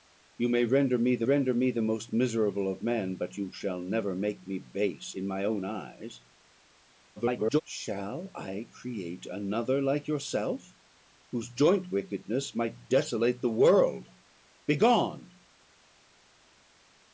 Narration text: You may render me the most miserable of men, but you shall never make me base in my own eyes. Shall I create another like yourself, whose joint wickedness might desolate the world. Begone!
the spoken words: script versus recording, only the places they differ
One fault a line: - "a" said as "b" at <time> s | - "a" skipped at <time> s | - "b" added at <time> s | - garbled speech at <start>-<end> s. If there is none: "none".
- "render me the" added at 1.2 s
- garbled speech at 7.2-7.6 s